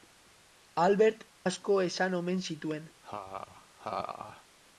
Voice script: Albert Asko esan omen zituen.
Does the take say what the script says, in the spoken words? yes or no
yes